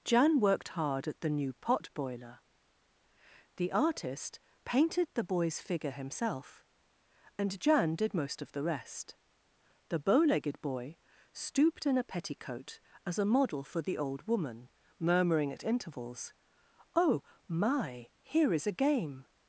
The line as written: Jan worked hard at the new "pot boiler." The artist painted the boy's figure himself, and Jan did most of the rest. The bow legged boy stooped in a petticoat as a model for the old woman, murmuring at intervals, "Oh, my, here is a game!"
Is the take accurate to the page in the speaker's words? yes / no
yes